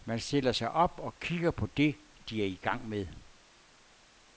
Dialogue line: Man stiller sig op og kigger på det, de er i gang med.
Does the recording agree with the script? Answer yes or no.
yes